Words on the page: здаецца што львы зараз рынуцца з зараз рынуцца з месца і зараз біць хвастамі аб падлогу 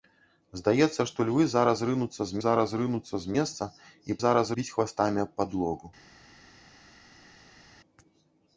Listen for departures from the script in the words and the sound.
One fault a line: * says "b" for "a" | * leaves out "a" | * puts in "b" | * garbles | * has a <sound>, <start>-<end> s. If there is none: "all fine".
all fine